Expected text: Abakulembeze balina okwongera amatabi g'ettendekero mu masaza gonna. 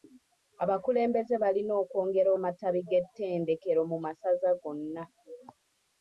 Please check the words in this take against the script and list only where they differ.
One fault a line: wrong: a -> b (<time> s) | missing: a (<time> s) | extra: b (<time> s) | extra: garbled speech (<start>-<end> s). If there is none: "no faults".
no faults